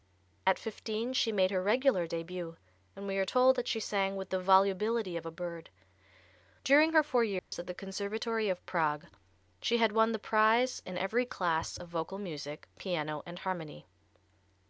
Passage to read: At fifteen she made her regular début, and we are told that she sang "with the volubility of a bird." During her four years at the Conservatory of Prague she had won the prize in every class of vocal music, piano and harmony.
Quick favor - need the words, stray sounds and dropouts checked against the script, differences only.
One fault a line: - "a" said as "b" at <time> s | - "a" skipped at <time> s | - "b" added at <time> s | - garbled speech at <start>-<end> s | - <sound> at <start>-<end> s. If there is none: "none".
- dropout at 7.4-7.5 s